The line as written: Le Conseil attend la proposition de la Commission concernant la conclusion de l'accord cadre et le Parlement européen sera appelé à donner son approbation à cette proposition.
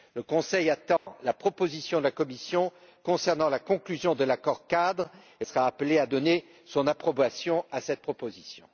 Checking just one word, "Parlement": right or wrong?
wrong